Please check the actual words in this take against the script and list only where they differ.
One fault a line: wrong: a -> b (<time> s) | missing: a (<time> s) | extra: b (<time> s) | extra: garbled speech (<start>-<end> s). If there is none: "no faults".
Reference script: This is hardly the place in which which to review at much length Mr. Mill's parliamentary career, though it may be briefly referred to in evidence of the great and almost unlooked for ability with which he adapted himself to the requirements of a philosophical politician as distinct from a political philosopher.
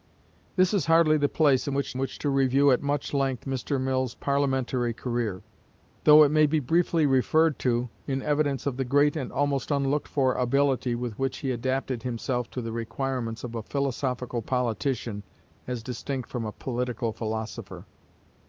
no faults